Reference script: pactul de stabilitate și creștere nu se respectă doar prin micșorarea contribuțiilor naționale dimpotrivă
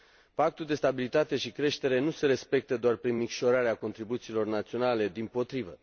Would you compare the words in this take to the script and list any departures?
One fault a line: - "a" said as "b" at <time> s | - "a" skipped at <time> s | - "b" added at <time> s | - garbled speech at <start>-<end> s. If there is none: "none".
none